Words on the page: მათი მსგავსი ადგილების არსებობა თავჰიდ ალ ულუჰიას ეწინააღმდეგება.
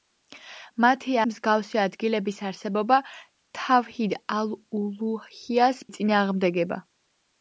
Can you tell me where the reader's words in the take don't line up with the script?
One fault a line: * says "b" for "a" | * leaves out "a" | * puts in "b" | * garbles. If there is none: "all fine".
all fine